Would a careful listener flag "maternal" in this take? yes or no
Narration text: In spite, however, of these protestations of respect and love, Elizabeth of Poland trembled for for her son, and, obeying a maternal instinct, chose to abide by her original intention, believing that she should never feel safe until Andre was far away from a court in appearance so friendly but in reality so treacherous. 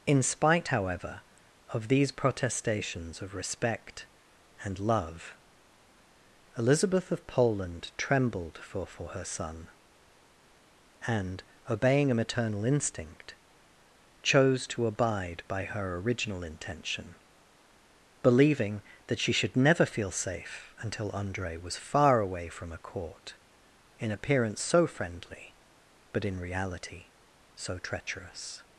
no